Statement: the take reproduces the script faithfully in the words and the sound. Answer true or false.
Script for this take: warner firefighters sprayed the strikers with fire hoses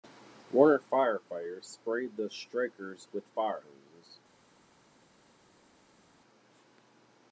true